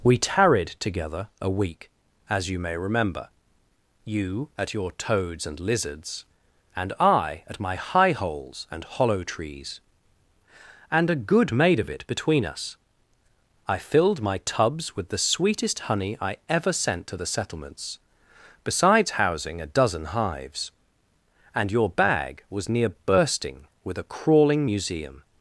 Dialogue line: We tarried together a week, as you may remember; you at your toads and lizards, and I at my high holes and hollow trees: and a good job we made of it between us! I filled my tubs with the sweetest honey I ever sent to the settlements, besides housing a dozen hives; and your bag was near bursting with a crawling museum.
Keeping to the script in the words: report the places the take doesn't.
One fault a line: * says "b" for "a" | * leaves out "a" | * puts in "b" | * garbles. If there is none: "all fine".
* leaves out "job we"